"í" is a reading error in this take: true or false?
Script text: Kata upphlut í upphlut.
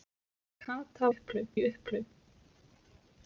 false